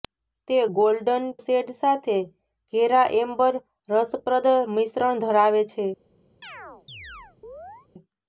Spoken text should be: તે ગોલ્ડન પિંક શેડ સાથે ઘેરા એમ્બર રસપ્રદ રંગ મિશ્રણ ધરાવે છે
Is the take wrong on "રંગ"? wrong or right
wrong